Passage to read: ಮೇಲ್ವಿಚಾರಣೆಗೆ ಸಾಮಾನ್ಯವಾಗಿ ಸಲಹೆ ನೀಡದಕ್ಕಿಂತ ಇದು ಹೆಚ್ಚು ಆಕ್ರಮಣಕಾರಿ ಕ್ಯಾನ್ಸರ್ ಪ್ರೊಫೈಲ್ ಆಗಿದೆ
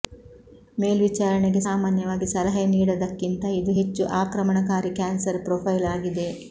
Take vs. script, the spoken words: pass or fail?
pass